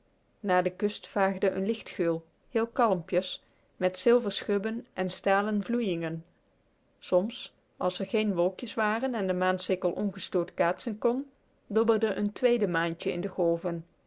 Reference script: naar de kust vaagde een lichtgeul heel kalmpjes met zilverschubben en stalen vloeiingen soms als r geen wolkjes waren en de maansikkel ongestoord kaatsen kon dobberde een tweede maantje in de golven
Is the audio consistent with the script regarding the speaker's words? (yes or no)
yes